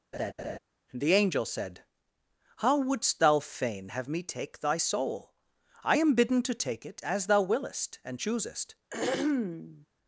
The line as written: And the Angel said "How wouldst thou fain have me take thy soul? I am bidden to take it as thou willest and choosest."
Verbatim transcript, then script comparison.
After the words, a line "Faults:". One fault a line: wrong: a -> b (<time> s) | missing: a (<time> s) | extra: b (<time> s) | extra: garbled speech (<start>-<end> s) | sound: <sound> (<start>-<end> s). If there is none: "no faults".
the Angel said "How wouldst thou fain have me take thy soul? I am bidden to take it as thou willest and choosest."
Faults:
sound: laugh (0.1-0.6 s)
missing: And (0.9 s)
sound: throat clearing (8.9-9.9 s)